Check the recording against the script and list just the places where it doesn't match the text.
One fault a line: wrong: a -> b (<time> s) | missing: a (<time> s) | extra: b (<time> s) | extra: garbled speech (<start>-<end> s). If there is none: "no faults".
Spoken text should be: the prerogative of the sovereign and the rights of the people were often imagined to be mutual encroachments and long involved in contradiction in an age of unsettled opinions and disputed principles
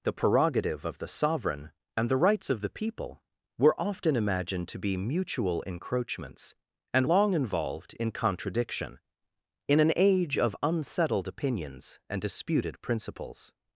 no faults